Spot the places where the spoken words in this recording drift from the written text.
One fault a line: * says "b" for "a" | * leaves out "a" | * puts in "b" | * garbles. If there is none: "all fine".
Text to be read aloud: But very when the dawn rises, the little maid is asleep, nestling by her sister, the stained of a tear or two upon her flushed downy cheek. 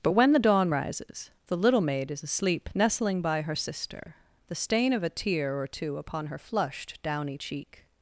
* leaves out "very"
* says "stain" for "stained"